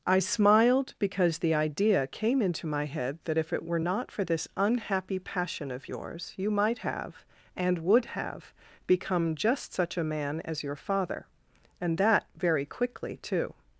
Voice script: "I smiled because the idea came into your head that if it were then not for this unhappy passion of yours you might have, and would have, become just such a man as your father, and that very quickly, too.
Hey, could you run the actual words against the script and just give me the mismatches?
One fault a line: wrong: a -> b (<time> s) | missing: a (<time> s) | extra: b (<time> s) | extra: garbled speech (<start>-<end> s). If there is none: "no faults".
wrong: your -> my (2.6 s)
missing: then (3.8 s)